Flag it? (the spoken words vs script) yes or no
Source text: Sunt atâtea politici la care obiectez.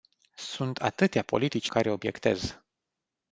yes